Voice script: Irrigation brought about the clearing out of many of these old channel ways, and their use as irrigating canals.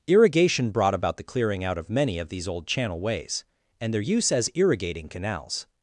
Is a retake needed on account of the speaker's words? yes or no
no